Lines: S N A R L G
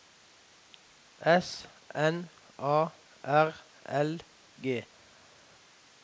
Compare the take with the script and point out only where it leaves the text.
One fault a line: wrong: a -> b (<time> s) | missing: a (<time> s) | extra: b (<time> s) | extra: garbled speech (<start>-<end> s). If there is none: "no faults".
no faults